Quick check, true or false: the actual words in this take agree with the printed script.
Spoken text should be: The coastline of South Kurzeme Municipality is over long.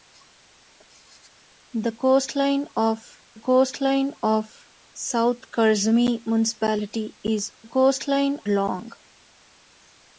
false